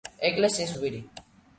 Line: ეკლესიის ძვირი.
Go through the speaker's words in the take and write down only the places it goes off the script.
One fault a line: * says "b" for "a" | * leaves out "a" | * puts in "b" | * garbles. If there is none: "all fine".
all fine